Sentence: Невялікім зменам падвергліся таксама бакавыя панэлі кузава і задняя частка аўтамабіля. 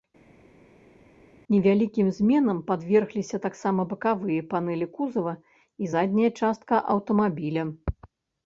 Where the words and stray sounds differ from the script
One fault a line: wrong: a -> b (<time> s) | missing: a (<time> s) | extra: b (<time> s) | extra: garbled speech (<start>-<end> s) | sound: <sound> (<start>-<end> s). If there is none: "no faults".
no faults